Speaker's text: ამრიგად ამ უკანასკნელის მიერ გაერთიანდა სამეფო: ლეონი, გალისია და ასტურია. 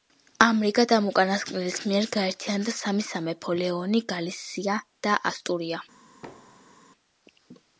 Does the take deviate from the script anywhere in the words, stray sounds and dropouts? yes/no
yes